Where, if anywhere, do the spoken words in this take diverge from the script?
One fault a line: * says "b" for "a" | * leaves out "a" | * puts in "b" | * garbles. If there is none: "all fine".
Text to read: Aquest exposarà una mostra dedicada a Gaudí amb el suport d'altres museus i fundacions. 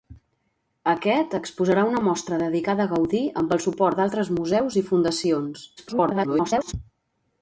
* garbles